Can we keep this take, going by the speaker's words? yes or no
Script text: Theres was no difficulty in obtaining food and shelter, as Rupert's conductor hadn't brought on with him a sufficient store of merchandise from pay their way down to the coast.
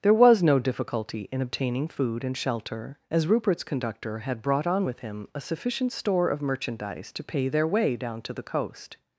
no